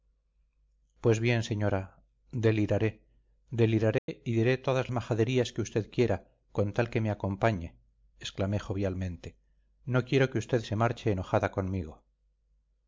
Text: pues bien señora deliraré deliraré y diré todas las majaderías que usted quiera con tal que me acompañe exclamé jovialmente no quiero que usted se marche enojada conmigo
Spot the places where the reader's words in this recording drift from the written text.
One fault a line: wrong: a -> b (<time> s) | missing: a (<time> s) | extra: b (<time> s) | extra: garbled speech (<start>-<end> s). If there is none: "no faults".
missing: las (4.9 s)